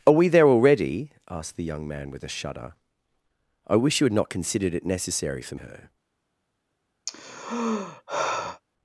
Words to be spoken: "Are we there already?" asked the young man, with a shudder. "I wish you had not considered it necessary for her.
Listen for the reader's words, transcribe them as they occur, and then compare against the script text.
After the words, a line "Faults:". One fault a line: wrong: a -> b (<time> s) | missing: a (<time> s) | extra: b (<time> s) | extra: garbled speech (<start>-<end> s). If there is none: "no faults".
"Are we there already?" asked the young man, with a shudder. "I wish you had not considered it necessary for her.
Faults:
no faults